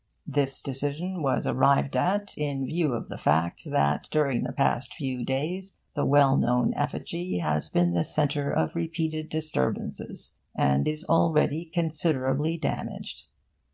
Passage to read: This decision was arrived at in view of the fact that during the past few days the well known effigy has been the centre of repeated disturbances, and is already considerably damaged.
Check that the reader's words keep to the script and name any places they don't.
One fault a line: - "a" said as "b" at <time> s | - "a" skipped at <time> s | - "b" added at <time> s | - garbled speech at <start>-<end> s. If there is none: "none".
none